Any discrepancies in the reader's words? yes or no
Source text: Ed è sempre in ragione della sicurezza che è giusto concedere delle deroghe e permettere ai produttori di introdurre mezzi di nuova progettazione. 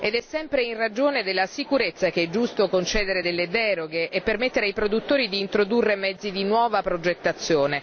no